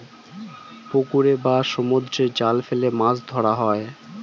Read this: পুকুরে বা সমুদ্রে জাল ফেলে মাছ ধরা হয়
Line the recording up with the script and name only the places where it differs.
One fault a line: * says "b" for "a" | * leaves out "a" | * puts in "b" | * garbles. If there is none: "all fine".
all fine